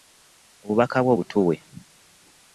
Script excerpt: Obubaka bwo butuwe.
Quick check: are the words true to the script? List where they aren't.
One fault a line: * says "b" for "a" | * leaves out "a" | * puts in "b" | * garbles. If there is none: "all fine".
all fine